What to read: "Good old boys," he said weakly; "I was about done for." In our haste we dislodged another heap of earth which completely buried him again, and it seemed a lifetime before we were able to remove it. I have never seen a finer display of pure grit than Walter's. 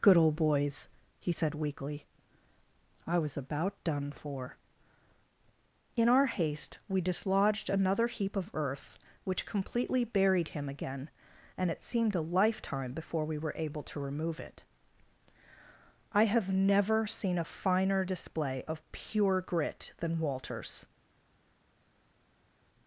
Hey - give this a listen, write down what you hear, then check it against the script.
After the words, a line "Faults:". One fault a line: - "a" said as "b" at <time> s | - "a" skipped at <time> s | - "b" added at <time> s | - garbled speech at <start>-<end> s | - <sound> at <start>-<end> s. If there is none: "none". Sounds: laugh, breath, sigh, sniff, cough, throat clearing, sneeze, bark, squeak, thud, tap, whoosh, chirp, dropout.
"Good old boys," he said weakly; "I was about done for." In our haste we dislodged another heap of earth which completely buried him again, and it seemed a lifetime before we were able to remove it. I have never seen a finer display of pure grit than Walter's.
Faults:
none